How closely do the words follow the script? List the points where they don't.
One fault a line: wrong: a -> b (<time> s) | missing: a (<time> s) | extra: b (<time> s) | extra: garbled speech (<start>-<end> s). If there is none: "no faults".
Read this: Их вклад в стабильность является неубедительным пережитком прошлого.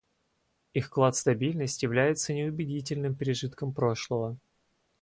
no faults